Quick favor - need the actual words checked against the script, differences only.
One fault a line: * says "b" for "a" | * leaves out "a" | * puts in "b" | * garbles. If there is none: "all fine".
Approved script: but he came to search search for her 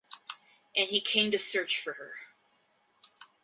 * says "and" for "but"
* leaves out "search"